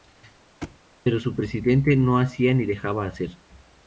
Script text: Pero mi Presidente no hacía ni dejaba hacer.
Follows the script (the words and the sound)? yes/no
no